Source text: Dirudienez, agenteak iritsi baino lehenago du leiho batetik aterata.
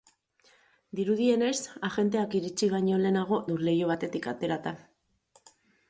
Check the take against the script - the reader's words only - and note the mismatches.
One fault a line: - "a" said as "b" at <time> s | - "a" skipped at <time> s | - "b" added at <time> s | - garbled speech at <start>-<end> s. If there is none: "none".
none